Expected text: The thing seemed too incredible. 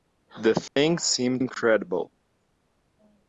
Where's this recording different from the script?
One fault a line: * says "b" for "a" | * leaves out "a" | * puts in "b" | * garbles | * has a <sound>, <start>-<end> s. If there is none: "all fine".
* has a dropout, 0.7-0.8 s
* leaves out "too"